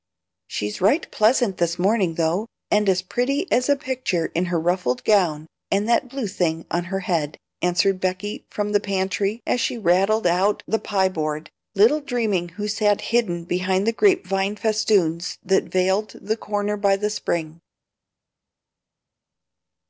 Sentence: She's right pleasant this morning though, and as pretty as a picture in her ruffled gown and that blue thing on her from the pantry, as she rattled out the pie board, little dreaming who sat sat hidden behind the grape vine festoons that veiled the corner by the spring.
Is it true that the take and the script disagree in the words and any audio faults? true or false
true